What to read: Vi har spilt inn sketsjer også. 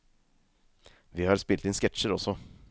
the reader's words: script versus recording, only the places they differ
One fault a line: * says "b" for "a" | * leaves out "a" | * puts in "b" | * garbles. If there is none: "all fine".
all fine